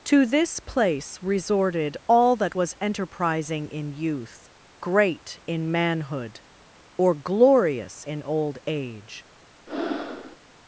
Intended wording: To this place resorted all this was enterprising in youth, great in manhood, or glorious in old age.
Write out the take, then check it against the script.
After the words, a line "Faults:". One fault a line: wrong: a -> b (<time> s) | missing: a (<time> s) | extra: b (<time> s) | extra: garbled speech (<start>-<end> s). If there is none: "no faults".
To this place resorted all that was enterprising in youth, great in manhood, or glorious in old age.
Faults:
wrong: this -> that (2.4 s)